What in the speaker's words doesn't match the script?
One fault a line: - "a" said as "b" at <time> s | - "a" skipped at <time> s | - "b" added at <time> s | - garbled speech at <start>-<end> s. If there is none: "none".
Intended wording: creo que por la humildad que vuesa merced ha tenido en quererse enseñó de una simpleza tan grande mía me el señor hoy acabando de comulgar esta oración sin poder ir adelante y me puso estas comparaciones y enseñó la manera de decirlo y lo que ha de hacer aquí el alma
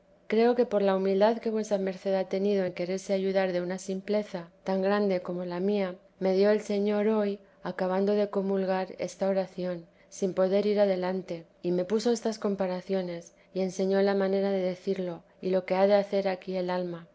- "enseñó" said as "ayudar" at 3.1 s
- "como la" added at 5.2 s
- "dio" added at 6.3 s